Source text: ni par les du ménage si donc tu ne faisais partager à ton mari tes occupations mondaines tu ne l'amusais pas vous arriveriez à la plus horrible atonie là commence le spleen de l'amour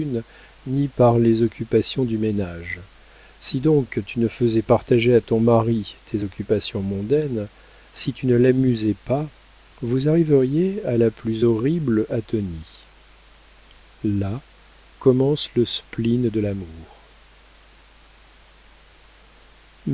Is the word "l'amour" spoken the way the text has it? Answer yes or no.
yes